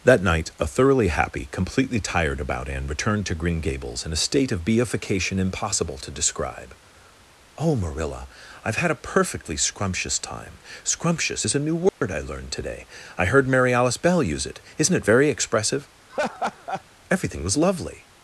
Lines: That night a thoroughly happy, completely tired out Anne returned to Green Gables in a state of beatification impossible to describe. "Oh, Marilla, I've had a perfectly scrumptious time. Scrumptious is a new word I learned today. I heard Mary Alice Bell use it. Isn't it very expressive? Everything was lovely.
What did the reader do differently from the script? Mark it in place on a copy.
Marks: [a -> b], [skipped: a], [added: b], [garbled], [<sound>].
That night a thoroughly happy, completely tired [out -> about] Anne returned to Green Gables in a state of beatification impossible to describe. "Oh, Marilla, I've had a perfectly scrumptious time. Scrumptious is a new word [dropout] I learned today. I heard Mary Alice Bell use it. Isn't it very expressive? [laugh] Everything was lovely.